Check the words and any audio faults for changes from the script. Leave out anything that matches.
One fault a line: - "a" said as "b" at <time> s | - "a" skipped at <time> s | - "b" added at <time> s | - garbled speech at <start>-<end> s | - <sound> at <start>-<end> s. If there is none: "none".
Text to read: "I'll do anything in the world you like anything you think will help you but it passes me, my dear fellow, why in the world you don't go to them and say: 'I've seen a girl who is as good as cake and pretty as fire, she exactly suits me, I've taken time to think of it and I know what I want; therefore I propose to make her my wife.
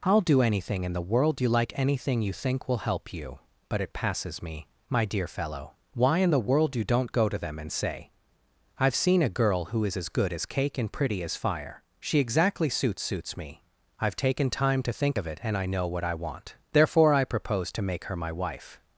- "suits" added at 13.0 s